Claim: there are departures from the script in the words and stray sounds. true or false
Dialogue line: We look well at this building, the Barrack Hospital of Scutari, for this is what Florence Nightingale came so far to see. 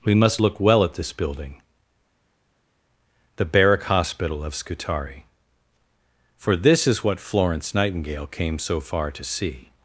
true